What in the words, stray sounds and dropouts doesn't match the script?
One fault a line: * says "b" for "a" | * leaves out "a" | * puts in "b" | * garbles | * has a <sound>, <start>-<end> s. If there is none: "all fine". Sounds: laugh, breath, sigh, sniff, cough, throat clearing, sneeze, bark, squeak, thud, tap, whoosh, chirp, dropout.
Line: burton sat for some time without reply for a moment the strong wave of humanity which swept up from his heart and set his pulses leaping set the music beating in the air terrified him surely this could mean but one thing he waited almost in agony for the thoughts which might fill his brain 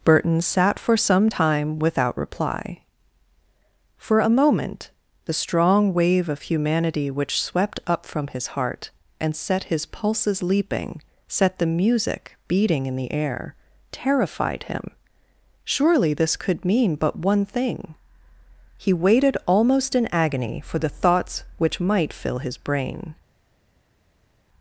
all fine